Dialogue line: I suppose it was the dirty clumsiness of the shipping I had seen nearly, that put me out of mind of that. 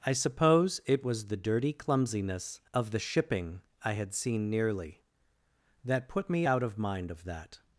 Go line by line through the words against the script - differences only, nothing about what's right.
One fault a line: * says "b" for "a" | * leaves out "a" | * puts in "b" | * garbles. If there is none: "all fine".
all fine